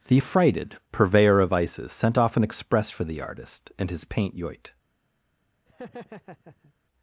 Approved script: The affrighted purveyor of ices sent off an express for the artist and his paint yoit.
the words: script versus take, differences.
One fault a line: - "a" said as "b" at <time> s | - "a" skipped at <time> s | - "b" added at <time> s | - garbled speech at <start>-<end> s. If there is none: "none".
none